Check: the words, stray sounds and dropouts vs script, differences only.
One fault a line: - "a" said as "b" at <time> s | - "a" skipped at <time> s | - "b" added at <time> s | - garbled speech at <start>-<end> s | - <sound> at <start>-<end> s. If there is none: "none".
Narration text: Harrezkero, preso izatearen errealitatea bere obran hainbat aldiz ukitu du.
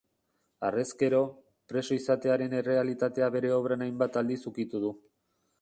none